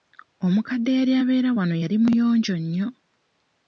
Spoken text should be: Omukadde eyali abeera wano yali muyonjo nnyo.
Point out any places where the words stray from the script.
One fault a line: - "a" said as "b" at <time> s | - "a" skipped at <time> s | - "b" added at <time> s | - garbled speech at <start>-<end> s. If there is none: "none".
none